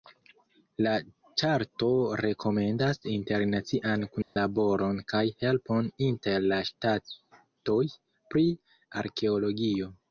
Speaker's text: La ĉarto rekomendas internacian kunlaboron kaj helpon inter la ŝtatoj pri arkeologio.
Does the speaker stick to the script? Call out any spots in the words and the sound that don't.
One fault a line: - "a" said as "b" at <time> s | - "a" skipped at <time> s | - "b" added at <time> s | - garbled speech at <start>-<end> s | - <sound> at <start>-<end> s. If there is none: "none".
- dropout at 4.2-4.4 s